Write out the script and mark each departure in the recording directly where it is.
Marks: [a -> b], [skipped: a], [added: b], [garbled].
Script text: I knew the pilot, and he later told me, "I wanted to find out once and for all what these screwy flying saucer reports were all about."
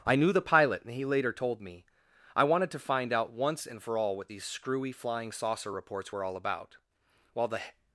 I knew the pilot, and he later told me, "I wanted to find out once and for all what these screwy flying saucer reports were all about." [added: While the]